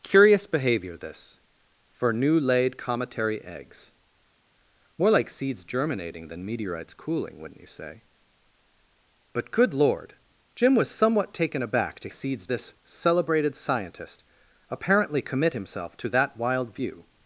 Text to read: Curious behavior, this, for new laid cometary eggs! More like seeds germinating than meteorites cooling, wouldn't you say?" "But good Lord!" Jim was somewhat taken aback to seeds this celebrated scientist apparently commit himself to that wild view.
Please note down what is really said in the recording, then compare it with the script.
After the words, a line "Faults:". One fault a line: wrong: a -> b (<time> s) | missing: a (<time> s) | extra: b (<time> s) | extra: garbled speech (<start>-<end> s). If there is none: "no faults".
Curious behavior, this, for new laid cometary eggs! More like seeds germinating than meteorites cooling, wouldn't you say?" "But good Lord!" Jim was somewhat taken aback to seeds this celebrated scientist apparently commit himself to that wild view.
Faults:
no faults